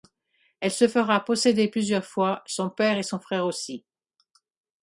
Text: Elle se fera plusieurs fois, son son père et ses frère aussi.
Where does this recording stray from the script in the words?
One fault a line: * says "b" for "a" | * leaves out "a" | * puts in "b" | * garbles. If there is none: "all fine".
* puts in "posséder"
* leaves out "son"
* says "son" for "ses"